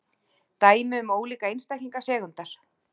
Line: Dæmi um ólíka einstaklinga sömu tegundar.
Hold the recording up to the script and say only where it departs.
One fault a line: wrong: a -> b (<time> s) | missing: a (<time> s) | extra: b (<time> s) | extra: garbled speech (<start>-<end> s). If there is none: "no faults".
missing: sömu (2.0 s)